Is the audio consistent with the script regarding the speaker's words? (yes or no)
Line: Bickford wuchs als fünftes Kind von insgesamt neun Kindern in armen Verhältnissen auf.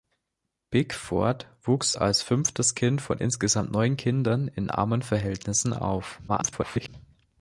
no